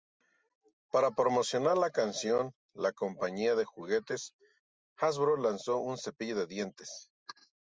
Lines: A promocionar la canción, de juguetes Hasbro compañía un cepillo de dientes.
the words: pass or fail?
fail